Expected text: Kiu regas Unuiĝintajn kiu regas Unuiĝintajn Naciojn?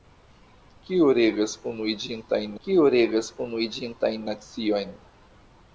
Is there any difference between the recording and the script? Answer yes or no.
no